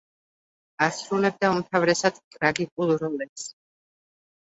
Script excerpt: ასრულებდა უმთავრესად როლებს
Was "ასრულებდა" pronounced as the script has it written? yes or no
yes